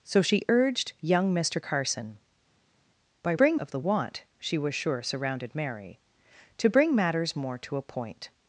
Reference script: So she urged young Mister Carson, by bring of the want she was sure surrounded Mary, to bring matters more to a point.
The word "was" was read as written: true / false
true